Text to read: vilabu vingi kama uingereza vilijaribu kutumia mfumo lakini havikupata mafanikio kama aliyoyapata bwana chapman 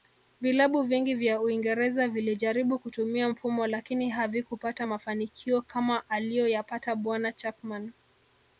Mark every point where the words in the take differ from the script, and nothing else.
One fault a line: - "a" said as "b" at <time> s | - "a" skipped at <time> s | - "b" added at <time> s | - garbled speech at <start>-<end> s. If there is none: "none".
- "kama" said as "vya" at 1.1 s